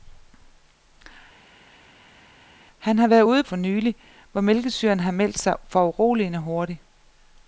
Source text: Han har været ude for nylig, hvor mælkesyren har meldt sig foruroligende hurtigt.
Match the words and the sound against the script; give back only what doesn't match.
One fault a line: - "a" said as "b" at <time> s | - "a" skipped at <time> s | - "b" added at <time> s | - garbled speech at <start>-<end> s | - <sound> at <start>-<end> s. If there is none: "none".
none